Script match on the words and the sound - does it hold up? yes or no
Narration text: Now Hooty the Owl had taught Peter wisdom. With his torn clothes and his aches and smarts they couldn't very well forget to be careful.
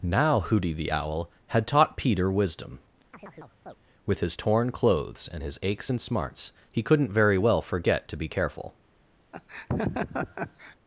no